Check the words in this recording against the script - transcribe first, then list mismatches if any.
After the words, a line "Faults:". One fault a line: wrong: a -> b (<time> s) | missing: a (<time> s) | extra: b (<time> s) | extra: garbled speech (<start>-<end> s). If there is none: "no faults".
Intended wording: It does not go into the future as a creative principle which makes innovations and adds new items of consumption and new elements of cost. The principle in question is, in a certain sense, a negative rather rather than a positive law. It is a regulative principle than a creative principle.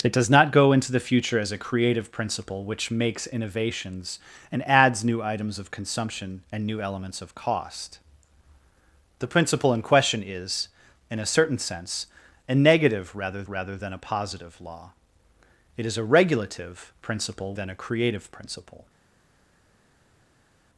It does not go into the future as a creative principle which makes innovations and adds new items of consumption and new elements of cost. The principle in question is, in a certain sense, a negative rather rather than a positive law. It is a regulative principle than a creative principle.
Faults:
no faults